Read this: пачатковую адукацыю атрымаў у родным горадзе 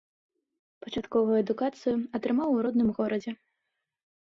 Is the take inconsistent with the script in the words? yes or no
no